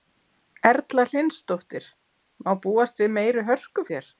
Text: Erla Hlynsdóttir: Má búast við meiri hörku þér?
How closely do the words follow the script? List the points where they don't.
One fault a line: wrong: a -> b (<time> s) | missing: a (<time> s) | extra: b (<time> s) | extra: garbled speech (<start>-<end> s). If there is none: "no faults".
no faults